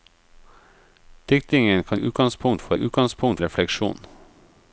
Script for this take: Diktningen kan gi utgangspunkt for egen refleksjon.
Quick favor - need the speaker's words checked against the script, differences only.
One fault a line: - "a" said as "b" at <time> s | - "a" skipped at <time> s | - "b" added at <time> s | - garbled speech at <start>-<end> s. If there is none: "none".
- "gi" skipped at 2.0 s
- "egen" said as "utgangspunkt" at 2.7 s